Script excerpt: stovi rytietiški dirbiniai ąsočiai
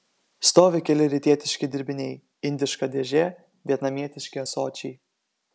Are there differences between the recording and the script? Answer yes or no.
yes